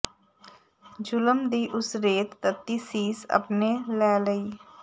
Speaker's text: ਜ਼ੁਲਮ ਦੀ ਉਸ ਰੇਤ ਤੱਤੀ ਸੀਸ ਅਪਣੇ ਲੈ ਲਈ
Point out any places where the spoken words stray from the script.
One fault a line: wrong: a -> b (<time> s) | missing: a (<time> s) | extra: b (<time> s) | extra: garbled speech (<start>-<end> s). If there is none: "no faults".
no faults